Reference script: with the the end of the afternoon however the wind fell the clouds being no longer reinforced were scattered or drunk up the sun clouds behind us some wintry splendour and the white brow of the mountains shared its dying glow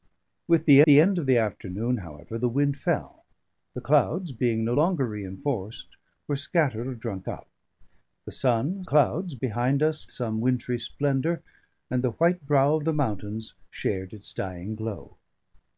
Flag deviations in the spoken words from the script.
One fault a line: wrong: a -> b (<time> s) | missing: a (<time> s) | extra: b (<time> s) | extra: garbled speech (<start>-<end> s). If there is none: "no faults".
no faults